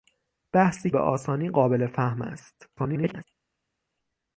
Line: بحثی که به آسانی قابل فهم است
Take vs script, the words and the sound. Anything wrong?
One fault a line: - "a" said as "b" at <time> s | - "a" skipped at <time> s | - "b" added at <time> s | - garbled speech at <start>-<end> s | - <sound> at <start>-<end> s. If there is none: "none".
- "که" skipped at 0.9 s
- garbled speech at 2.8-3.2 s